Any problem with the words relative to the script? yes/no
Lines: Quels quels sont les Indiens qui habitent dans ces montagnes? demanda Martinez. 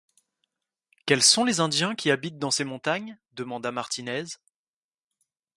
yes